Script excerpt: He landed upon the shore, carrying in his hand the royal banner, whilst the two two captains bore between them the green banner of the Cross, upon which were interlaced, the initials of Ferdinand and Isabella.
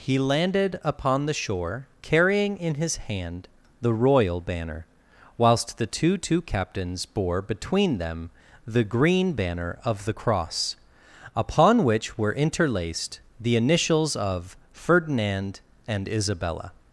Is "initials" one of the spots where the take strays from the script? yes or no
no